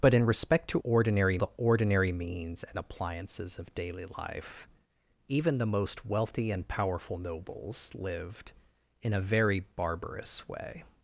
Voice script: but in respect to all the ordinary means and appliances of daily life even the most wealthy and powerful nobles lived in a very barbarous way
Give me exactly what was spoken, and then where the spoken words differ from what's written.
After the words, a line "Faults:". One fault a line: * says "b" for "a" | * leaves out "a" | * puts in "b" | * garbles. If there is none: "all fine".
but in respect to ordinary the ordinary means and appliances of daily life even the most wealthy and powerful nobles lived in a very barbarous way
Faults:
* says "ordinary" for "all"